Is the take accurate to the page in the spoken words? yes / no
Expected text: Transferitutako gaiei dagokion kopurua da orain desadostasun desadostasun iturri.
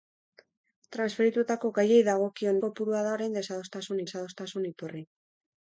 yes